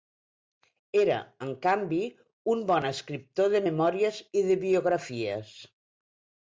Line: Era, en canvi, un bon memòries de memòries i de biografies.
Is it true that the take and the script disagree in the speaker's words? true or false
true